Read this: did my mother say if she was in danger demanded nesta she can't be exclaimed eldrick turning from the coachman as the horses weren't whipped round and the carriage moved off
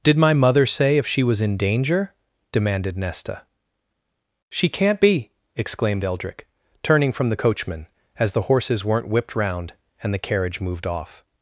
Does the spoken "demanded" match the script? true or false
true